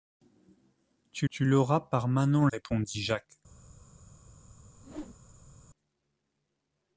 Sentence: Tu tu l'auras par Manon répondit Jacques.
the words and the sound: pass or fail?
fail